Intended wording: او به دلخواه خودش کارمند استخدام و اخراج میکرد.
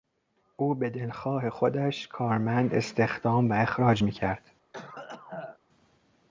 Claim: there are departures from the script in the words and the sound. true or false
true